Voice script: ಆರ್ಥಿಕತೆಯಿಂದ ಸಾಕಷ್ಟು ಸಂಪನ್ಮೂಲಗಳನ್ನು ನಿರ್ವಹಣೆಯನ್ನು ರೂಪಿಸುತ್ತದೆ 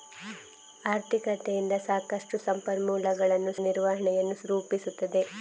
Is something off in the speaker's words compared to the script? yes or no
no